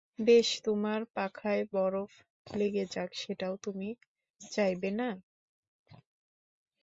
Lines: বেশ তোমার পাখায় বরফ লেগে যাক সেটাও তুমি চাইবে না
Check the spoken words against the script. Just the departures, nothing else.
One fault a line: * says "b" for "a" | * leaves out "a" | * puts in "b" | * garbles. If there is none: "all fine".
all fine